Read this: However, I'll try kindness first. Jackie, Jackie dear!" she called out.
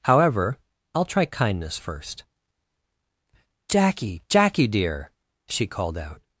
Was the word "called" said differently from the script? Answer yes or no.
no